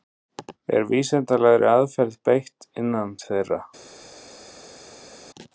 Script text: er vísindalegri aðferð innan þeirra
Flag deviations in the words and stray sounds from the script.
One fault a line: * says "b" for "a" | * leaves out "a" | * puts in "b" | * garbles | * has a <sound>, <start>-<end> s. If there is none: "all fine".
* puts in "beitt"